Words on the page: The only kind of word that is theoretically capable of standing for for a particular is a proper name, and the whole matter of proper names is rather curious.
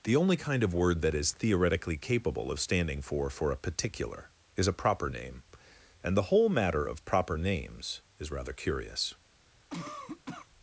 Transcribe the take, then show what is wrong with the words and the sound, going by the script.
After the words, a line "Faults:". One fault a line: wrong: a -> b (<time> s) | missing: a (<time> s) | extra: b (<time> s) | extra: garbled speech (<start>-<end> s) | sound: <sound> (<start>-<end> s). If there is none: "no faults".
The only kind of word that is theoretically capable of standing for for a particular is a proper name, and the whole matter of proper names is rather curious.
Faults:
sound: cough (9.7-10.5 s)